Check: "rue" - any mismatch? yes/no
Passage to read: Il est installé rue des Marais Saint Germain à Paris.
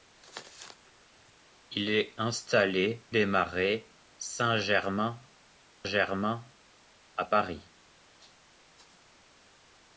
yes